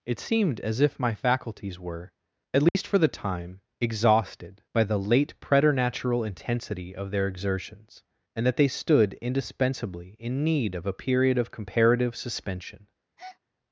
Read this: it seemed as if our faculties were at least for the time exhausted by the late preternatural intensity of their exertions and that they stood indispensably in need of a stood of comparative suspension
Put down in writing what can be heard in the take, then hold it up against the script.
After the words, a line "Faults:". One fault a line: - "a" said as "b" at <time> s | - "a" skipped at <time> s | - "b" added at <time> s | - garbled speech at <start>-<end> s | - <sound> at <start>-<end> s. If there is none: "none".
it seemed as if my faculties were at least for the time exhausted by the late preternatural intensity of their exertions and that they stood indispensably in need of a period of comparative suspension
Faults:
- "our" said as "my" at 1.0 s
- dropout at 2.7-2.7 s
- "stood" said as "period" at 10.9 s
- breath at 13.2-13.4 s